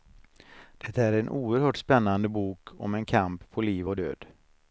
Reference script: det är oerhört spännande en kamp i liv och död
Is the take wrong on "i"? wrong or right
wrong